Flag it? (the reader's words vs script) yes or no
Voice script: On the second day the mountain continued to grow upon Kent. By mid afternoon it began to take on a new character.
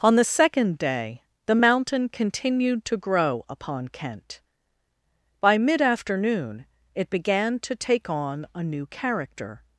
no